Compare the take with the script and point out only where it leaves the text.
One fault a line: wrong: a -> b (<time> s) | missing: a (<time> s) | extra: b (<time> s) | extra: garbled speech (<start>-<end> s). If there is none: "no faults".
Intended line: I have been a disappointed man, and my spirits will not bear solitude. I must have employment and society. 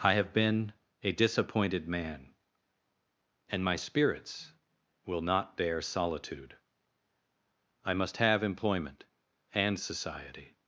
no faults